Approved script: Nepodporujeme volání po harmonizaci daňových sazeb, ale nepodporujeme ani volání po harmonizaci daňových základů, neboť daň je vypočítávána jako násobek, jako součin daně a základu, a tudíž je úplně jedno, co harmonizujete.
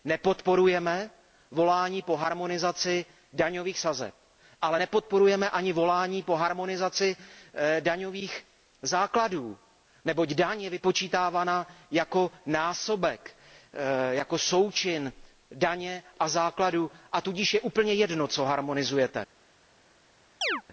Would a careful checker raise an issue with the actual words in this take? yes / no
no